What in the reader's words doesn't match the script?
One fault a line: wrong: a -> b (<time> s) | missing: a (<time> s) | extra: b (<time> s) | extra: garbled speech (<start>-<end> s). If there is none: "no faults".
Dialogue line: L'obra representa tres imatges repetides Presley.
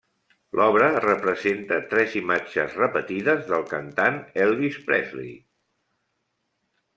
extra: del cantant Elvis (3.5 s)